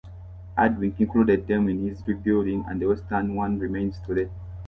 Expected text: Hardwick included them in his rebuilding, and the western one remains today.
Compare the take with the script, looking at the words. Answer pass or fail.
pass